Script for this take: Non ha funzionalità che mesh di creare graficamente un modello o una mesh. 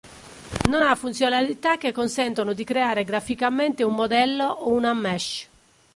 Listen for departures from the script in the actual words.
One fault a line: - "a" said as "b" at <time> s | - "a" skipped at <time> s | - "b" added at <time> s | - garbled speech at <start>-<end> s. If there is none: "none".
- "mesh" said as "consentono" at 1.9 s